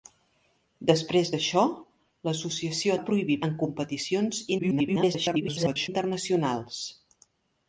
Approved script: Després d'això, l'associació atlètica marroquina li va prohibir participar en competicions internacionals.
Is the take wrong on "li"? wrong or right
wrong